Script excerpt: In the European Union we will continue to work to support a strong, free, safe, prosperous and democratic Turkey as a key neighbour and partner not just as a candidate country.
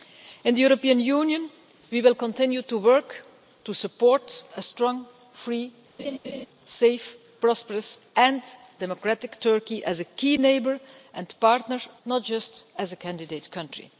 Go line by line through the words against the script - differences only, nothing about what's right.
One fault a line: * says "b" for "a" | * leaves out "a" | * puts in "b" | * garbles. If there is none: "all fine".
all fine